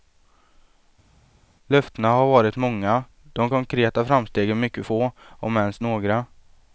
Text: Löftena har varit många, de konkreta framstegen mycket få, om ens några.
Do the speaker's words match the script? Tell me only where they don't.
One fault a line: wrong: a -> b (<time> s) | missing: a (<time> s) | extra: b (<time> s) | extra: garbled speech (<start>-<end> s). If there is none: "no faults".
no faults